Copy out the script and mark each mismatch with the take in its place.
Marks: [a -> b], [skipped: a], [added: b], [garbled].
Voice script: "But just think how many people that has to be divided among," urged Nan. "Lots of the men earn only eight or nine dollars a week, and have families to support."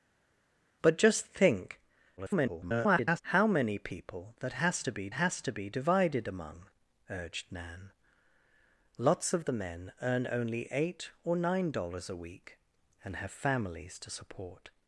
"But just think [garbled] how many people that has to be [added: has to be] divided among," urged Nan. "Lots of the men earn only eight or nine dollars a week, and have families to support."